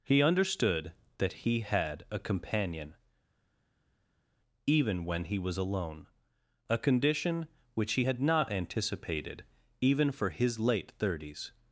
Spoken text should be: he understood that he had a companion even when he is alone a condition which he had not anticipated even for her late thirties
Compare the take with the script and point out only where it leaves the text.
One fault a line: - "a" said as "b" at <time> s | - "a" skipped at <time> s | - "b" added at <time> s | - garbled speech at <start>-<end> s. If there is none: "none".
- "is" said as "was" at 5.4 s
- "her" said as "his" at 10.3 s